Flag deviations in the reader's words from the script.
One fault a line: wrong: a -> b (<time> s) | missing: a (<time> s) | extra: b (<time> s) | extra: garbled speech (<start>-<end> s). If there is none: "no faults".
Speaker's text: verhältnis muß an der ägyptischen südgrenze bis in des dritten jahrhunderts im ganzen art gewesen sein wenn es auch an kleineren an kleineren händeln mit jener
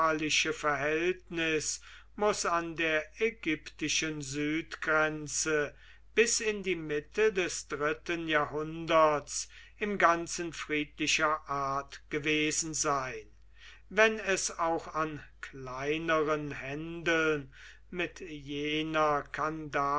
extra: die mitte (6.6 s)
extra: friedlicher (10.5 s)
missing: an kleineren (16.5 s)